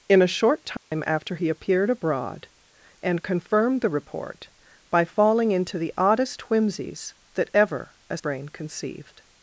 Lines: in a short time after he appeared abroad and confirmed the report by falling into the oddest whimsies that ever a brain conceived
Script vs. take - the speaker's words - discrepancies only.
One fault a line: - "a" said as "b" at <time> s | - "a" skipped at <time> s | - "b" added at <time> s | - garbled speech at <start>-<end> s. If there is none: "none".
none